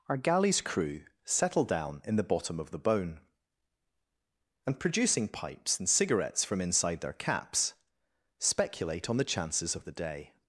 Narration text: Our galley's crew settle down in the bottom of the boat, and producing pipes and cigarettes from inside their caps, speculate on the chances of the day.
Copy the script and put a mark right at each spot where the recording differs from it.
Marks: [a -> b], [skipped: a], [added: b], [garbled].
Our galley's crew settle down in the bottom of the [boat, -> bone] and producing pipes and cigarettes from inside their caps, speculate on the chances of the day.